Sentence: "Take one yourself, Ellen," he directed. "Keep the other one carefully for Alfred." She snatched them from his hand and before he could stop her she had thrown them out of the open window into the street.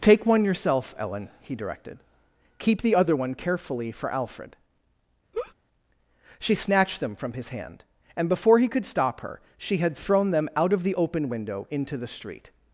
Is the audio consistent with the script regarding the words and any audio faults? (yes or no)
no